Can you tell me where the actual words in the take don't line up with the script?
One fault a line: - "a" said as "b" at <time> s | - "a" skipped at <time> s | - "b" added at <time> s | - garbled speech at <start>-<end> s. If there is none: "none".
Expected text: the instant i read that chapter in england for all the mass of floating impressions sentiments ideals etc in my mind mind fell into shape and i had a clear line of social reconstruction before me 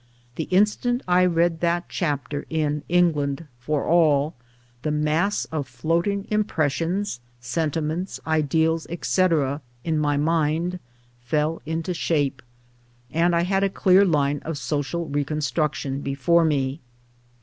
- "mind" skipped at 10.8 s